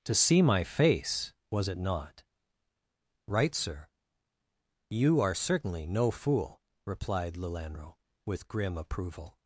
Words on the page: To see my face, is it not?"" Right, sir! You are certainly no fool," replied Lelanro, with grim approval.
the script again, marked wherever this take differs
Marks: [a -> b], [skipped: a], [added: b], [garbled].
To see my face, [is -> was] it not?"" Right, sir! You are certainly no fool," replied Lelanro, with grim approval.